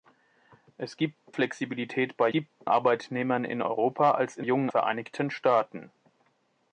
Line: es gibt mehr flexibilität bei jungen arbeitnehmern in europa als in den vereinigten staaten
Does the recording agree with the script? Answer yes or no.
no